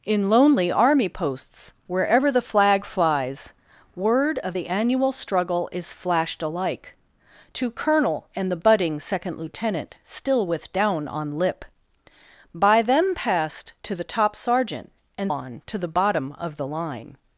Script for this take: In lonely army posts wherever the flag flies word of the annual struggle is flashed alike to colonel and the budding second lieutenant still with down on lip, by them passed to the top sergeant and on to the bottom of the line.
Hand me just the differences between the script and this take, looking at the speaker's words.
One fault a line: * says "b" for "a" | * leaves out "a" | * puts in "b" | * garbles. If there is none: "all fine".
all fine